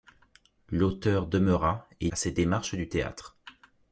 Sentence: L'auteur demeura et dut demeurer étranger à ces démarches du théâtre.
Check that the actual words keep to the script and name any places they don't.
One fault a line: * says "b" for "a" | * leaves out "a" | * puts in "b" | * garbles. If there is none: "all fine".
* leaves out "dut demeurer étranger"